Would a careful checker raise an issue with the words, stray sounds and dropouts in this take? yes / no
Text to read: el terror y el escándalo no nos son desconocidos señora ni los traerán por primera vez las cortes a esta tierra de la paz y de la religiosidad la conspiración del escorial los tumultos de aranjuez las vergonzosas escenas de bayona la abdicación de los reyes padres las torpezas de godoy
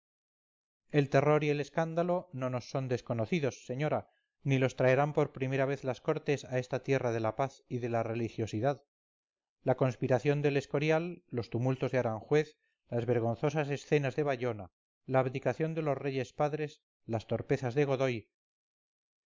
no